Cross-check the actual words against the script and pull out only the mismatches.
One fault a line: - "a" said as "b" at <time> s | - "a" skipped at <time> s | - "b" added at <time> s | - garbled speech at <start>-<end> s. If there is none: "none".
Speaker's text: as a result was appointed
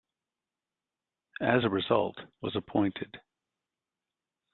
none